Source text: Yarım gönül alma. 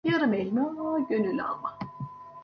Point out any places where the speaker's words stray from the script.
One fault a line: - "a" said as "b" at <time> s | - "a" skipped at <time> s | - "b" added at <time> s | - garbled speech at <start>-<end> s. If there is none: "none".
- "elma" added at 0.3 s